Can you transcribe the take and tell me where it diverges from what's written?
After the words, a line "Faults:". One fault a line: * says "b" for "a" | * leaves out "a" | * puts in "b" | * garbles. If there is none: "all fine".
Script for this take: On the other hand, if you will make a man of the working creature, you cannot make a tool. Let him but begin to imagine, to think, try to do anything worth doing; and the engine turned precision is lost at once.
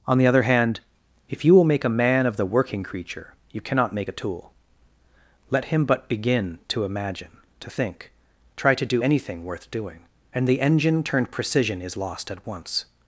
On the other hand, if you will make a man of the working creature, you cannot make a tool. Let him but begin to imagine, to think, try to do anything worth doing; and the engine turned precision is lost at once.
Faults:
all fine